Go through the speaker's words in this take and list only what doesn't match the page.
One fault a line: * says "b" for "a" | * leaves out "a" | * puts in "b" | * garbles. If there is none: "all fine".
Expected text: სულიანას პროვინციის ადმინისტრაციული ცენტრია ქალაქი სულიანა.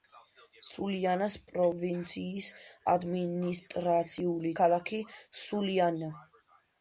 * leaves out "ცენტრია"